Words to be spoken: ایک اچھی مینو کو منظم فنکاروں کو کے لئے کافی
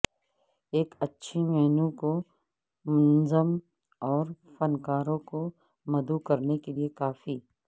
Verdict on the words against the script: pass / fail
fail